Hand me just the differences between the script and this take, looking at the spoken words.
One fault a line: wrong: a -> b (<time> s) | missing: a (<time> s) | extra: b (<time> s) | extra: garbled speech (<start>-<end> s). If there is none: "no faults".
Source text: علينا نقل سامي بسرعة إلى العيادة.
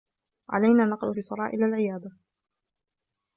missing: سامي (1.1 s)